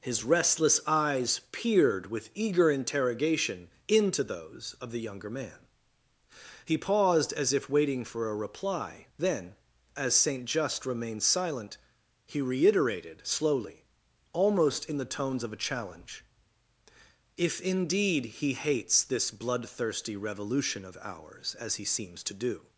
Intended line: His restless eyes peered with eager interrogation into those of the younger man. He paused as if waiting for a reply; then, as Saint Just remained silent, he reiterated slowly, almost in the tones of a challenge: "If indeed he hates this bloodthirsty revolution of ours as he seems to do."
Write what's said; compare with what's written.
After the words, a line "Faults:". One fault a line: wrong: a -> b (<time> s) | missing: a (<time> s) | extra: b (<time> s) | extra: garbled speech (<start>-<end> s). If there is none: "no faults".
His restless eyes peered with eager interrogation into those of the younger man. He paused as if waiting for a reply; then, as Saint Just remained silent, he reiterated slowly, almost in the tones of a challenge: "If indeed he hates this bloodthirsty revolution of ours as he seems to do."
Faults:
no faults